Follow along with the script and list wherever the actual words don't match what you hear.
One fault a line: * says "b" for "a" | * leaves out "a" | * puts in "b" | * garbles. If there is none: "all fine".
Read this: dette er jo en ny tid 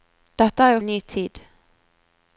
all fine